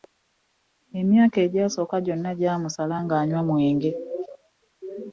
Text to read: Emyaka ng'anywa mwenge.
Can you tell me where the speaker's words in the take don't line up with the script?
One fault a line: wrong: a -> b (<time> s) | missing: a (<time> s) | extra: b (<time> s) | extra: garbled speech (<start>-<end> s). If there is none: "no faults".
extra: egyasooka gyonna gyamusala (1.4 s)